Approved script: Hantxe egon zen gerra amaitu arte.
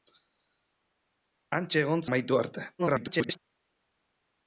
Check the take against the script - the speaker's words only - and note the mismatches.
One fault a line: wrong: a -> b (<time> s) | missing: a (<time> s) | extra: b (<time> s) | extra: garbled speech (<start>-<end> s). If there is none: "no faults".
missing: zen gerra (2.0 s)
extra: garbled speech (2.8-3.4 s)